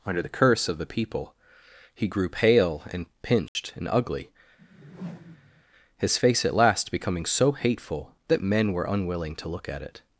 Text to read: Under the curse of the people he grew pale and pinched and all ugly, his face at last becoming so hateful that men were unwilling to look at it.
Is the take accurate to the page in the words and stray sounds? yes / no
no